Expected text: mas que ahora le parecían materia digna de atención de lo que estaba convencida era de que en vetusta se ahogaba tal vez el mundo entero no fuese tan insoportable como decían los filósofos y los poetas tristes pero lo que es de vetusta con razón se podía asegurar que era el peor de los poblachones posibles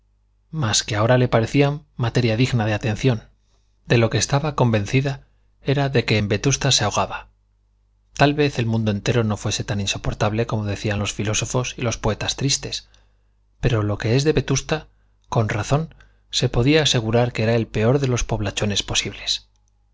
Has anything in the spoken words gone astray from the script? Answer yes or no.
no